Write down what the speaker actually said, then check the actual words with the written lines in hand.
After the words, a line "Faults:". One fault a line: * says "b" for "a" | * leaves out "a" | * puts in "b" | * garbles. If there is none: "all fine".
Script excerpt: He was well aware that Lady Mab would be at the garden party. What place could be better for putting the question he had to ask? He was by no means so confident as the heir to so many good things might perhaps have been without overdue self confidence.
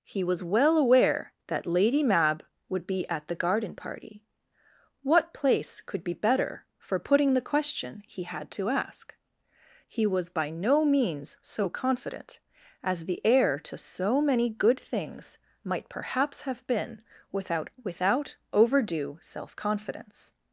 He was well aware that Lady Mab would be at the garden party. What place could be better for putting the question he had to ask? He was by no means so confident as the heir to so many good things might perhaps have been without without overdue self confidence.
Faults:
* puts in "without"